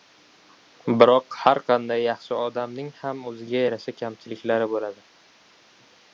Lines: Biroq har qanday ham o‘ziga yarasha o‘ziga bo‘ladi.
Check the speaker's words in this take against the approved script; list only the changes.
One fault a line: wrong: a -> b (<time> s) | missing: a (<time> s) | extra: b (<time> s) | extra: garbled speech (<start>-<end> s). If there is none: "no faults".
extra: yaxshi odamning (2.0 s)
wrong: o‘ziga -> kamchiliklari (4.0 s)